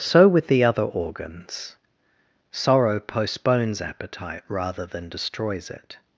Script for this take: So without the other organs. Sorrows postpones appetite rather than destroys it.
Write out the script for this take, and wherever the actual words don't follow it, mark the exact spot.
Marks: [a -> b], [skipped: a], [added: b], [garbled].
So [without -> with] the other organs. [Sorrows -> Sorrow] postpones appetite rather than destroys it.